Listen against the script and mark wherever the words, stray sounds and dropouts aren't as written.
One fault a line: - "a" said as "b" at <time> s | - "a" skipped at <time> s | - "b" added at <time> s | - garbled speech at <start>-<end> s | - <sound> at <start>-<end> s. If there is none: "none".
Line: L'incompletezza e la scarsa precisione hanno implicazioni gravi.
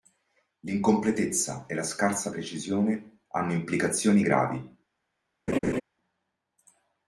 - laugh at 5.5-5.8 s